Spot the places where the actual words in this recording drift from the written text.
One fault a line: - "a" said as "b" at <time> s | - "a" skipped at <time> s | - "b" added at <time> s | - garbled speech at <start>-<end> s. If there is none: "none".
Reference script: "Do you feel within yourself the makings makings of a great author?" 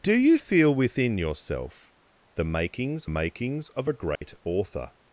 none